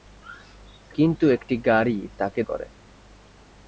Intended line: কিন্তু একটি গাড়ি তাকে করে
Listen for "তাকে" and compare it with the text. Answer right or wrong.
right